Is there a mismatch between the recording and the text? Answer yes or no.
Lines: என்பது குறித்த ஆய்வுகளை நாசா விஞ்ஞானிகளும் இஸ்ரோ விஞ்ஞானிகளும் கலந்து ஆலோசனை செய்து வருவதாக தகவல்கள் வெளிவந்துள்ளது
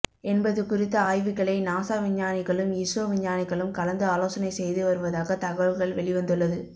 no